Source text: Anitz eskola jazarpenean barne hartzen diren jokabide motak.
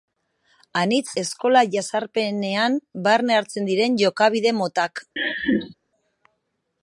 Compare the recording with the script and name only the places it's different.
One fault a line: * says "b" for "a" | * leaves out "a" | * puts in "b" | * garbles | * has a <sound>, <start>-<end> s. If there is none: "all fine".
* has a laugh, 5.2-5.7 s